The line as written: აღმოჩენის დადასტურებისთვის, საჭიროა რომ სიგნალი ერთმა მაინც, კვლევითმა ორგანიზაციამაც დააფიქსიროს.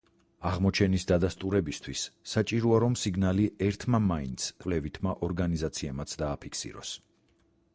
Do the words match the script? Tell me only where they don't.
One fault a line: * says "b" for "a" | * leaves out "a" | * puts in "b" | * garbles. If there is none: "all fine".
all fine